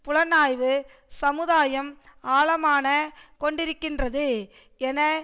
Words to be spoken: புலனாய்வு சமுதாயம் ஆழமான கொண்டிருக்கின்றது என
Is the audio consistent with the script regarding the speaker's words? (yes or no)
yes